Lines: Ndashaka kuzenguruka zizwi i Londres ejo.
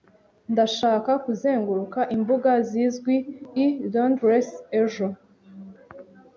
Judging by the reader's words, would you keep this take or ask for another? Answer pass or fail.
fail